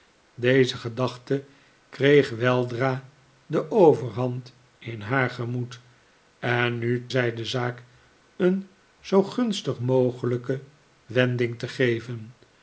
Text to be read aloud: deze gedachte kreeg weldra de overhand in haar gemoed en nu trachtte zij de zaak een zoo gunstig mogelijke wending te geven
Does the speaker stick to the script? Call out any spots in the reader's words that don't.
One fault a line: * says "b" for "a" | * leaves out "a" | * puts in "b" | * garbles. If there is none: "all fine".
* leaves out "trachtte"